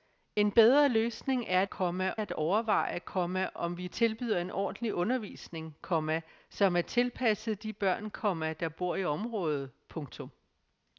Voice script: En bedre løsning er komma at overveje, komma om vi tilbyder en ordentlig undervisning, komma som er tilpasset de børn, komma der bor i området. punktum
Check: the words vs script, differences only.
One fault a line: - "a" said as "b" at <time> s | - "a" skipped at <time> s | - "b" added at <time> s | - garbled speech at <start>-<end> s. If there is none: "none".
none